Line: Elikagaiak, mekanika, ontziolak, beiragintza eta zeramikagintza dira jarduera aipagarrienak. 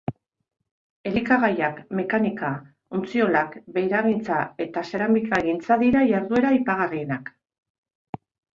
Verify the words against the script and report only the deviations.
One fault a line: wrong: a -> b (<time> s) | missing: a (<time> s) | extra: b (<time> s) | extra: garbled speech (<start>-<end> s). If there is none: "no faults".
no faults